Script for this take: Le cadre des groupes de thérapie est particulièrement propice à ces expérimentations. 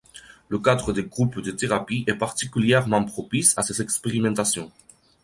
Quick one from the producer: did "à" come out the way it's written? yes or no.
yes